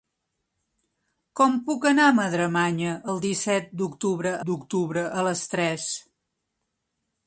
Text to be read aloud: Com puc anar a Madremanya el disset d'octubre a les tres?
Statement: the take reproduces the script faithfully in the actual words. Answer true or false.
false